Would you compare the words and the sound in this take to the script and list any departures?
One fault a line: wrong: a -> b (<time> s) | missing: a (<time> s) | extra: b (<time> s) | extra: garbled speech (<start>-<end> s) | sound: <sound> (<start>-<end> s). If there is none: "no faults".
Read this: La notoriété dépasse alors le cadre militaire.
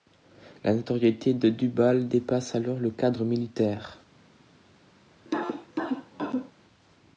extra: de Dubail (1.4 s)
sound: cough (5.2-6.5 s)